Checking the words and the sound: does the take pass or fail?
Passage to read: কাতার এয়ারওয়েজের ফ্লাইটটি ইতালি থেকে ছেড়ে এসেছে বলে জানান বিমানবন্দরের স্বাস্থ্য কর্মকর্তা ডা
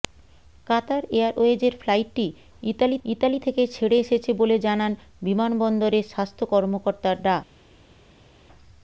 fail